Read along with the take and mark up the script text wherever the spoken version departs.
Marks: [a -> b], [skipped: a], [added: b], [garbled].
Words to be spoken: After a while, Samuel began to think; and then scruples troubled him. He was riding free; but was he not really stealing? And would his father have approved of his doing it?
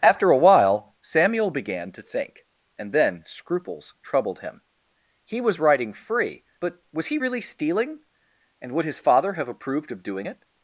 After a while, Samuel began to think; and then scruples troubled him. He was riding free; but was he [skipped: not] really stealing? And would his father have approved of [skipped: his] doing it?